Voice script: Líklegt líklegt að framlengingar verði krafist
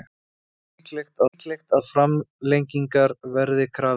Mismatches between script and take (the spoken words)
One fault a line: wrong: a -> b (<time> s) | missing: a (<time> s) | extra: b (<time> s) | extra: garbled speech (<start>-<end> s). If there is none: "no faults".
no faults